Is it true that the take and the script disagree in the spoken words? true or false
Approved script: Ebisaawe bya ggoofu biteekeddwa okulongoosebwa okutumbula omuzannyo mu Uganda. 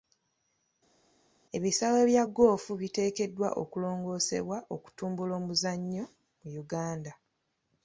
false